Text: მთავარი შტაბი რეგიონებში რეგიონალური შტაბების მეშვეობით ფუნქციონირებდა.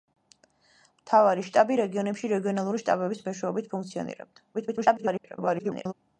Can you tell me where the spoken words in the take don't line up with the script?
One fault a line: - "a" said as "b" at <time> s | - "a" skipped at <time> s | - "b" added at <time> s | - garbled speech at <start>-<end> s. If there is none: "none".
- garbled speech at 4.5-5.9 s